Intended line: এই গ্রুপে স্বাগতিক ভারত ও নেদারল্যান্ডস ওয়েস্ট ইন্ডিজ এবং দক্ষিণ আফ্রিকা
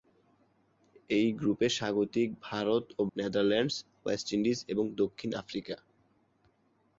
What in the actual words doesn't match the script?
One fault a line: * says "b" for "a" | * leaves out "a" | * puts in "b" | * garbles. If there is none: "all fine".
all fine